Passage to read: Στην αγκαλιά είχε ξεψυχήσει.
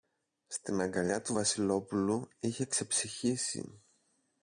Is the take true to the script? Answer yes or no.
no